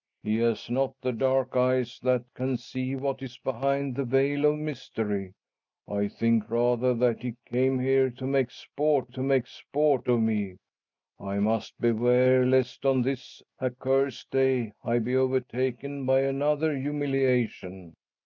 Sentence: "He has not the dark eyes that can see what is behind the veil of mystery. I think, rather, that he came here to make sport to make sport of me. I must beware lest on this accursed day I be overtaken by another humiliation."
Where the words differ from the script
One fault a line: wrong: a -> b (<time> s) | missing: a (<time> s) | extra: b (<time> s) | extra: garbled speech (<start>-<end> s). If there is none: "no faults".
no faults